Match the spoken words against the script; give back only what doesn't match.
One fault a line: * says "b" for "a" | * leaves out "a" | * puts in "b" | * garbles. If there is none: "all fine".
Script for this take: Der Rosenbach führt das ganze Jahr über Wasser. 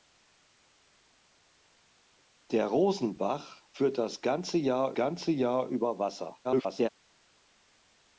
* puts in "ganze Jahr"
* garbles